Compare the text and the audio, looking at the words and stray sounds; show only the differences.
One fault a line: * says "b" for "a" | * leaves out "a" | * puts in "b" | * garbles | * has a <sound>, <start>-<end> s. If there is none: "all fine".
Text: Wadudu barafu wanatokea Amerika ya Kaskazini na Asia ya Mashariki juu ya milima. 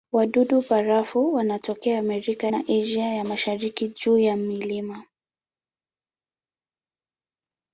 * leaves out "ya Kaskazini"